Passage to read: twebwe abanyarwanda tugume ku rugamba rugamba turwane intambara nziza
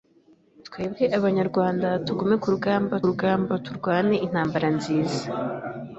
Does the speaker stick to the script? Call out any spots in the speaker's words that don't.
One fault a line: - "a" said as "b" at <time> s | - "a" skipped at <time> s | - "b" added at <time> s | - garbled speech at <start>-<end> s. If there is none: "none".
none